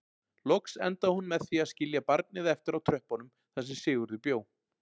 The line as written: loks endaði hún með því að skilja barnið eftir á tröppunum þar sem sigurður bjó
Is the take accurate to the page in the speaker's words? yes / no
yes